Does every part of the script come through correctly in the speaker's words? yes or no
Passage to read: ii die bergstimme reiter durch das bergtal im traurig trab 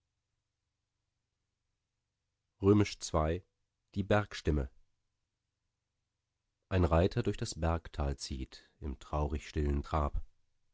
no